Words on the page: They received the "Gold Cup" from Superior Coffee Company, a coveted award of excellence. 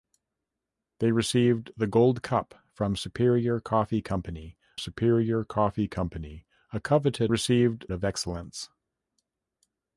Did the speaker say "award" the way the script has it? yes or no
no